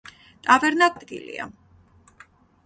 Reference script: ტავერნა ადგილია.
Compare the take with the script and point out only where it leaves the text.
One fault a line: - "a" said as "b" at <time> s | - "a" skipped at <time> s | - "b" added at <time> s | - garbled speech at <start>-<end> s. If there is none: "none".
none